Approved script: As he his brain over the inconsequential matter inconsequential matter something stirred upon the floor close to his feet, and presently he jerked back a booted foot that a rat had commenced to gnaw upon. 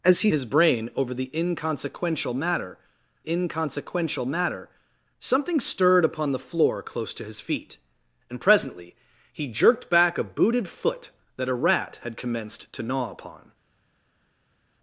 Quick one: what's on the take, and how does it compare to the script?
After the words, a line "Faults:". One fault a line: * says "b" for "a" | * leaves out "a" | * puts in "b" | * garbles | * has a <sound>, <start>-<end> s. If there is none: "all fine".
As he his brain over the inconsequential matter inconsequential matter something stirred upon the floor close to his feet, and presently he jerked back a booted foot that a rat had commenced to gnaw upon.
Faults:
all fine